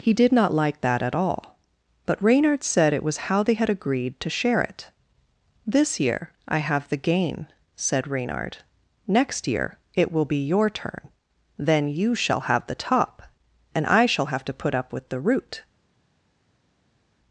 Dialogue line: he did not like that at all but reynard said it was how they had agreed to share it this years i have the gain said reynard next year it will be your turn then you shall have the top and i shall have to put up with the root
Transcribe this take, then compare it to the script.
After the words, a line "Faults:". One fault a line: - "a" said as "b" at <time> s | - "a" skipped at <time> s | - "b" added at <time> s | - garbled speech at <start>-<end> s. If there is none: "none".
he did not like that at all but reynard said it was how they had agreed to share it this year i have the gain said reynard next year it will be your turn then you shall have the top and i shall have to put up with the root
Faults:
- "years" said as "year" at 6.0 s